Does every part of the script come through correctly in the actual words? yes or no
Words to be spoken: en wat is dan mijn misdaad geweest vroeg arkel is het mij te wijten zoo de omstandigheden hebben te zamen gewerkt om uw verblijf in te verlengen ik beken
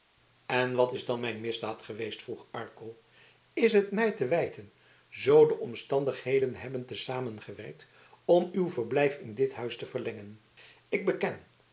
no